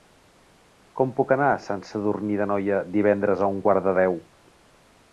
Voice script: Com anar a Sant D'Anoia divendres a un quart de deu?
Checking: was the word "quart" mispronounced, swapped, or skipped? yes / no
no